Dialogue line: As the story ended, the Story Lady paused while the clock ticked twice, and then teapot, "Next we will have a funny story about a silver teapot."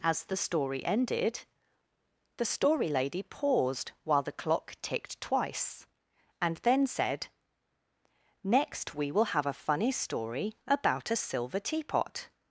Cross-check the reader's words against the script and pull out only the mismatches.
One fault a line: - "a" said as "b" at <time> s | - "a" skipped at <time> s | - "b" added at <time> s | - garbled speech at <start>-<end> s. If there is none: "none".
- "teapot" said as "said" at 6.9 s